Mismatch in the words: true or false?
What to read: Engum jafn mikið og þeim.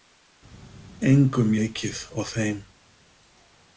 true